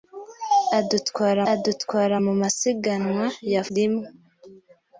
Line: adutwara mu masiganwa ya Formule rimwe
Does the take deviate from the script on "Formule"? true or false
true